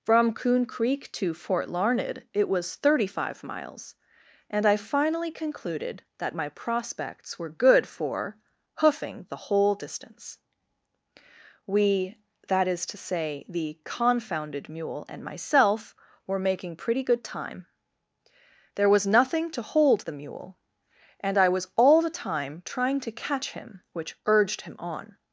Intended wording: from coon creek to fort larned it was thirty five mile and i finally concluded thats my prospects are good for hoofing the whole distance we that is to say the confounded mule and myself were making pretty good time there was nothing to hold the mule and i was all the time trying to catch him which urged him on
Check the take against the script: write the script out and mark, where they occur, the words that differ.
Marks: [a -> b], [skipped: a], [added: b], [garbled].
from coon creek to fort larned it was thirty five [mile -> miles] and i finally concluded [thats -> that] my prospects [are -> were] good for hoofing the whole distance we that is to say the confounded mule and myself were making pretty good time there was nothing to hold the mule and i was all the time trying to catch him which urged him on